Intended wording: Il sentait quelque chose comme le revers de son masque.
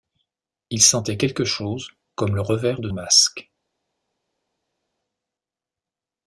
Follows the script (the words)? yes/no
no